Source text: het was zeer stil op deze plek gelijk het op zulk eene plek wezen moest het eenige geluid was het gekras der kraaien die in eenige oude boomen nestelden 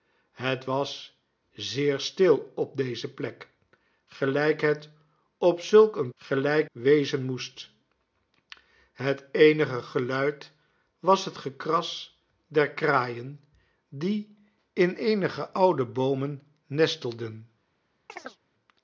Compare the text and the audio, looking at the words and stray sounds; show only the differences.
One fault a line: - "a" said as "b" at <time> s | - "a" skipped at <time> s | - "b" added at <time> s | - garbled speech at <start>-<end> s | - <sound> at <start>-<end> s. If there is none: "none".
- "plek" said as "gelijk" at 6.1 s
- chirp at 18.1-18.4 s